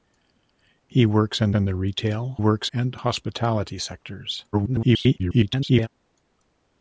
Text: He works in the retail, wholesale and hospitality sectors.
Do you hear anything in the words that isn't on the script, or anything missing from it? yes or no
yes